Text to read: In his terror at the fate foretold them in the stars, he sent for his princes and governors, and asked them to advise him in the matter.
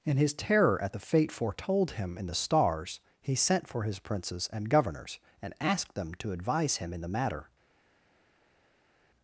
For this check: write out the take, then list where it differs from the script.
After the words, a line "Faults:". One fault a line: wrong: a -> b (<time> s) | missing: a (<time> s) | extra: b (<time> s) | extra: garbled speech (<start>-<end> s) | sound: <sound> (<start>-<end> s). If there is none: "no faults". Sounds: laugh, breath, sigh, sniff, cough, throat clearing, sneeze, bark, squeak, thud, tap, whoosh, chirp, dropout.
In his terror at the fate foretold him in the stars, he sent for his princes and governors, and asked them to advise him in the matter.
Faults:
wrong: them -> him (1.9 s)